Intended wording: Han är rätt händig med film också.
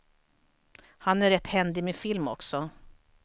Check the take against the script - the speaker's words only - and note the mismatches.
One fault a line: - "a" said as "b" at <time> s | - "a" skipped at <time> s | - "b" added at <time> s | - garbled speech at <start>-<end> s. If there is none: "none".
none